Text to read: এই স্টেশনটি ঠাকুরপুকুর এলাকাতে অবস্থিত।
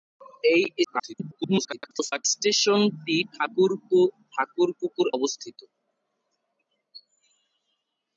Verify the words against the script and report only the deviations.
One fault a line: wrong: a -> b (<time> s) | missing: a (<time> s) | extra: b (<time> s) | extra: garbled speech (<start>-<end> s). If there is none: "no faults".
extra: garbled speech (0.8-2.3 s)
missing: এলাকাতে (5.1 s)